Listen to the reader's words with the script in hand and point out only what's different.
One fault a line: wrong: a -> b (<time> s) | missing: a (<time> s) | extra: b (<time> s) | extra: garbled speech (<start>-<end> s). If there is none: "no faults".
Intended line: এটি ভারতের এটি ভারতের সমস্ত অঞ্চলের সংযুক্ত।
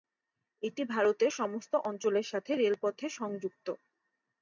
wrong: এটি ভারতের সমস্ত অঞ্চলের -> সমস্ত অঞ্চলের সাথে রেলপথে (1.3 s)